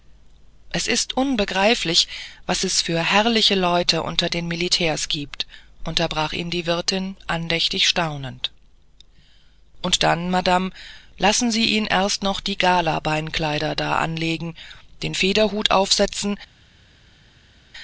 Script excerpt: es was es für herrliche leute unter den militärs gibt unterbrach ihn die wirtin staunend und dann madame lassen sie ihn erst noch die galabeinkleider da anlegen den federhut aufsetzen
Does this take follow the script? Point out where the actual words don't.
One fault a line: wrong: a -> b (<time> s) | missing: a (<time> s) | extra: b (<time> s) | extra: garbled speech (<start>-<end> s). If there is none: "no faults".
extra: ist unbegreiflich (0.9 s)
extra: andächtig (7.3 s)